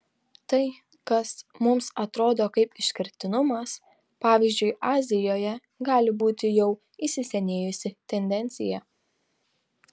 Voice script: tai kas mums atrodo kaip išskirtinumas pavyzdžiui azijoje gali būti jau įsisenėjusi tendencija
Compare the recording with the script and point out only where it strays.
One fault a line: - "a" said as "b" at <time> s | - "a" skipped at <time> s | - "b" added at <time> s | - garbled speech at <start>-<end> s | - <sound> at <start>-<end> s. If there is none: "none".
none